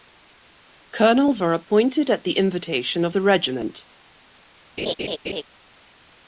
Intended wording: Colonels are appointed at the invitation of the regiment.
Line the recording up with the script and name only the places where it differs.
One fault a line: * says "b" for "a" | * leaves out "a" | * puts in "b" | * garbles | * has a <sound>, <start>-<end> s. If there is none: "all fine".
* has a laugh, 4.8-5.4 s